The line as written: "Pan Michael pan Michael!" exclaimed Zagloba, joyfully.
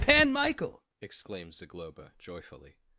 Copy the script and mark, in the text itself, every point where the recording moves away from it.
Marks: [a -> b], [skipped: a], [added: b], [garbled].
"Pan Michael [skipped: pan Michael!"] exclaimed Zagloba, joyfully.